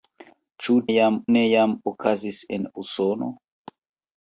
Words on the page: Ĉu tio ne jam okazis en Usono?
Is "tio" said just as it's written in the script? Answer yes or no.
no